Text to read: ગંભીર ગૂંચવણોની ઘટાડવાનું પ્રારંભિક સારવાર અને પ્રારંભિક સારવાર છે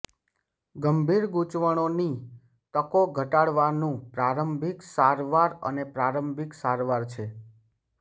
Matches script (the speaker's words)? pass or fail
fail